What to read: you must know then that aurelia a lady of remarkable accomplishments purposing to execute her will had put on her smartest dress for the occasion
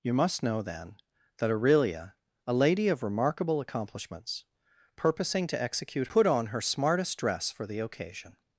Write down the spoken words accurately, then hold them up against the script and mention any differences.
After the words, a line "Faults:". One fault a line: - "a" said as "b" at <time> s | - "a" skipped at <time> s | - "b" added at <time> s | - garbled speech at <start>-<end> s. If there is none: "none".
you must know then that aurelia a lady of remarkable accomplishments purposing to execute put on her smartest dress for the occasion
Faults:
- "her will had" skipped at 6.1 s